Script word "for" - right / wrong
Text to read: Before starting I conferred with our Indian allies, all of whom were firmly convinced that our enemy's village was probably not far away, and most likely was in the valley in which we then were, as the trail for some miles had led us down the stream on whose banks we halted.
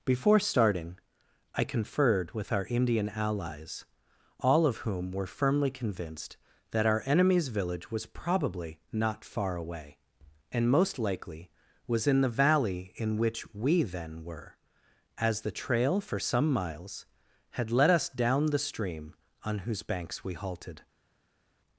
right